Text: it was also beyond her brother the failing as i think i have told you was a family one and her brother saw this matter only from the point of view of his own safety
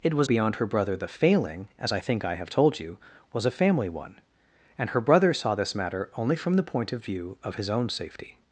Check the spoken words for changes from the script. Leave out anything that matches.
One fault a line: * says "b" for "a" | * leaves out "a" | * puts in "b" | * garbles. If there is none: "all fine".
* leaves out "also"